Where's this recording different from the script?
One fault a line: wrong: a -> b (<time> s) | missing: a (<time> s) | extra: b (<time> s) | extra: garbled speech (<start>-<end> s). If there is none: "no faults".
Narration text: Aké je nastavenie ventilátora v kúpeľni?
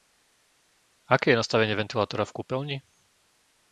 no faults